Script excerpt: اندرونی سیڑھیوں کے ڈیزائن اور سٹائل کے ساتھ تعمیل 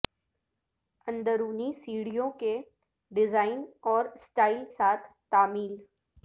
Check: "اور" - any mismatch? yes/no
no